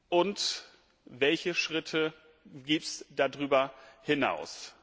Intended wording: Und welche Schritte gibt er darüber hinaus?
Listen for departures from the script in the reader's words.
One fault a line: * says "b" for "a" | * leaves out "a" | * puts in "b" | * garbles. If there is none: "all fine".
* says "es" for "er"